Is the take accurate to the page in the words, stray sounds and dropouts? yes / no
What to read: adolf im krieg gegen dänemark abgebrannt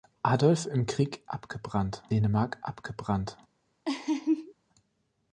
no